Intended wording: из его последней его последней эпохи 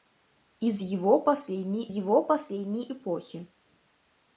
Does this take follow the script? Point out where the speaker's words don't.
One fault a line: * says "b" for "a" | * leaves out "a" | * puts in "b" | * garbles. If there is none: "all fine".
all fine